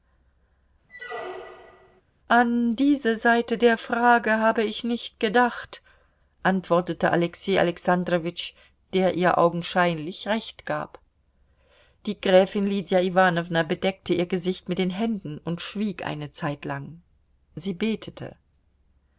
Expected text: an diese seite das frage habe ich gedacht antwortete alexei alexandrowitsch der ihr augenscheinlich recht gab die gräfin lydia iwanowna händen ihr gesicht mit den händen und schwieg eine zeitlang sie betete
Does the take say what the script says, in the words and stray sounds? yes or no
no